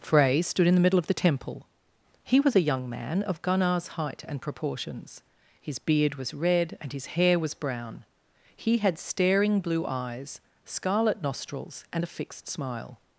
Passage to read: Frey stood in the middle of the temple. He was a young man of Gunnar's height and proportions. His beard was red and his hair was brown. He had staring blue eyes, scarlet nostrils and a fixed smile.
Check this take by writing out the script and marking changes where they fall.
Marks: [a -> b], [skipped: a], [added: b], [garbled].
Frey stood in the middle of the temple. He was a young man of Gunnar's height and proportions. His beard was red and his hair was brown. He had staring blue eyes, scarlet nostrils and a fixed smile.